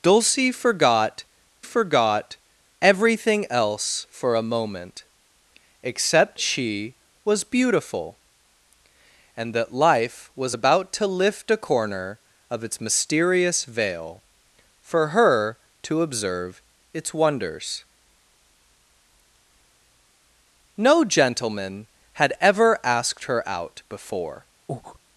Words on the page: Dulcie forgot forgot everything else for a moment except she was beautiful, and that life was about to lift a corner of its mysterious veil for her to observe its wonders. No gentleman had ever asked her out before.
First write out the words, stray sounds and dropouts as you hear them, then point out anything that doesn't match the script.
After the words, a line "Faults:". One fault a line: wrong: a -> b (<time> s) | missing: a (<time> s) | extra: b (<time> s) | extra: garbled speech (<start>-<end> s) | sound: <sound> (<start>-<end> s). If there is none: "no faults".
Dulcie forgot forgot everything else for a moment except she was beautiful, and that life was about to lift a corner of its mysterious veil for her to observe its wonders. No gentleman had ever asked her out before.
Faults:
sound: breath (24.7-25.0 s)